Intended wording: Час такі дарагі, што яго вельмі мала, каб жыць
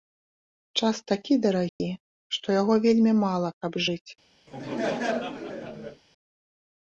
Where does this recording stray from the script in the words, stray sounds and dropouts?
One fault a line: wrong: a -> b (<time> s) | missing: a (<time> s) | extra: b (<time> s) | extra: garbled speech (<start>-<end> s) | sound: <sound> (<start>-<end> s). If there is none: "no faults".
sound: dropout (1.7-1.8 s)
sound: laugh (4.5-6.0 s)